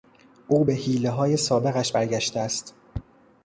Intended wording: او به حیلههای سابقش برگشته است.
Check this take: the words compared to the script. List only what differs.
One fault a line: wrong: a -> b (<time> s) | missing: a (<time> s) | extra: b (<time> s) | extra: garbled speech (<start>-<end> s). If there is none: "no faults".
no faults